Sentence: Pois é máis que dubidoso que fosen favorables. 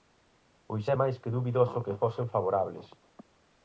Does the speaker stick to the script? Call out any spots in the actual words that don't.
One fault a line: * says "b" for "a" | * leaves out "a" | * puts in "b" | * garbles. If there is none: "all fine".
all fine